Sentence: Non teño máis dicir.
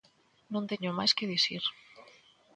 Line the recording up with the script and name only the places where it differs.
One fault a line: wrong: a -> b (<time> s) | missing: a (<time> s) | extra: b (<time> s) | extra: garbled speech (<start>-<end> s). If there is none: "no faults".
extra: que (1.2 s)